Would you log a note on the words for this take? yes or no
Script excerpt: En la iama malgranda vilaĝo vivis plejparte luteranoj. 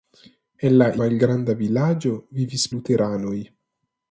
yes